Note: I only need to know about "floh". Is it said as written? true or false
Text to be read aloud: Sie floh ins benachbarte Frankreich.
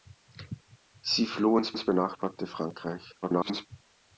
true